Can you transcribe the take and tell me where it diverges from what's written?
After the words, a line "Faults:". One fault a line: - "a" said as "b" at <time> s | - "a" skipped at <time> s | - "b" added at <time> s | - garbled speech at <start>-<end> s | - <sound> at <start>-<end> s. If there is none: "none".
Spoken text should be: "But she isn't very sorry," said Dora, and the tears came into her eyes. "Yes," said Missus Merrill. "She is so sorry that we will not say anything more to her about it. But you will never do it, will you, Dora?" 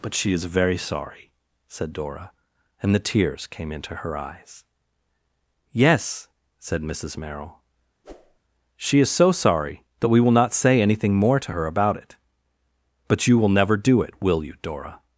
"But she is very sorry," said Dora, and the tears came into her eyes. "Yes," said Missus Merrill. "She is so sorry that we will not say anything more to her about it. But you will never do it, will you, Dora?"
Faults:
- "isn't" said as "is" at 0.3 s
- whoosh at 8.0-8.4 s